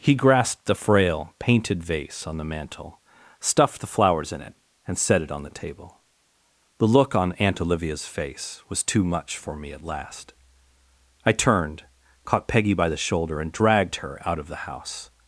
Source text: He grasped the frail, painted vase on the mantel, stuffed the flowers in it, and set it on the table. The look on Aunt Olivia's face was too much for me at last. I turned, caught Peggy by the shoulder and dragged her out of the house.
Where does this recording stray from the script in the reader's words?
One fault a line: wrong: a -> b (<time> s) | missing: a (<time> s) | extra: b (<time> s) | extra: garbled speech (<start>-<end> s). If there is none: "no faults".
no faults